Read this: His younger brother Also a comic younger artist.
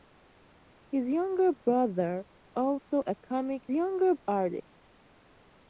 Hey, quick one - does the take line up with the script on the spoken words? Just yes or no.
yes